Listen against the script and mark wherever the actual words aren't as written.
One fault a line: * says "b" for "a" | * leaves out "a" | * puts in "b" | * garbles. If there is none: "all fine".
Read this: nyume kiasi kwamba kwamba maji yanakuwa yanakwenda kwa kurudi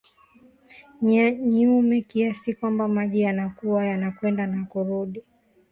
* leaves out "kwamba"
* says "na" for "kwa"